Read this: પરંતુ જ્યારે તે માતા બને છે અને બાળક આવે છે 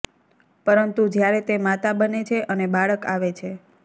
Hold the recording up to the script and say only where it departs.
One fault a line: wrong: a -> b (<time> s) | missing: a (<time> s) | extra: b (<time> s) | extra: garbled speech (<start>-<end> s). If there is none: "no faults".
no faults